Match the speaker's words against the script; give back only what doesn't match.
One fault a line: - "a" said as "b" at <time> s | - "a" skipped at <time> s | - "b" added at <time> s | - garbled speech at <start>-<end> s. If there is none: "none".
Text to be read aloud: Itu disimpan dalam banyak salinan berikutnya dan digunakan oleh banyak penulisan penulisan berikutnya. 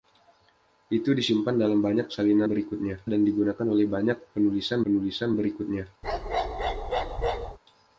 none